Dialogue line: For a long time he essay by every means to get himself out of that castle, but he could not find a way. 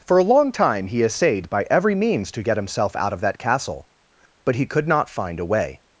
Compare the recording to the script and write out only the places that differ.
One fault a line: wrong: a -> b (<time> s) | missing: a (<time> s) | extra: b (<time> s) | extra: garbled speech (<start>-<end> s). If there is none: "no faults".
wrong: essay -> essayed (1.0 s)